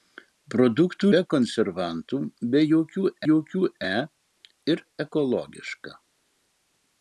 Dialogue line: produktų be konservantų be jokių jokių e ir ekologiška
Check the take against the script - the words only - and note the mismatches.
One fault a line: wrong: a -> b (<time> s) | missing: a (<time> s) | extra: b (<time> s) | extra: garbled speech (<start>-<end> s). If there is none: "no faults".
no faults